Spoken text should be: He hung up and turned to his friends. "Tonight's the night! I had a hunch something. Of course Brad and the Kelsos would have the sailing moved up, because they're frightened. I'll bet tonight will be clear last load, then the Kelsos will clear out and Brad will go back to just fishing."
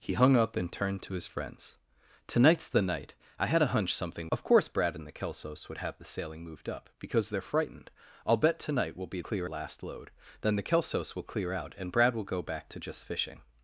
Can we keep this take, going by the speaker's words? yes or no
yes